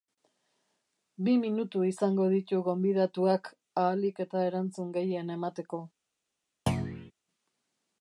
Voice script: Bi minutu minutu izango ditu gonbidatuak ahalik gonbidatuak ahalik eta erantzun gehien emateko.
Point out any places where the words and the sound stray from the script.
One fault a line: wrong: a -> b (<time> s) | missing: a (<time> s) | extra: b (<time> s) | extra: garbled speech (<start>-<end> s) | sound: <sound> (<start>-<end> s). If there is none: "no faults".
missing: minutu (1.8 s)
missing: gonbidatuak ahalik (4.2 s)
sound: thud (6.7-7.1 s)